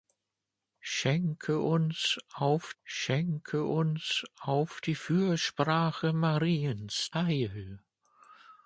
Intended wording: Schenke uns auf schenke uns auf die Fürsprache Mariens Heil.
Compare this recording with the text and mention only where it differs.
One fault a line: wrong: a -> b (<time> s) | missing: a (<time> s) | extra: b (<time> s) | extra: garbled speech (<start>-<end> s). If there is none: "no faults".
no faults